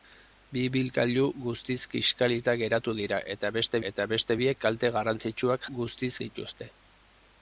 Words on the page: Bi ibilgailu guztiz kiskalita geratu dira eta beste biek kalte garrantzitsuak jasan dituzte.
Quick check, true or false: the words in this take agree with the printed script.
false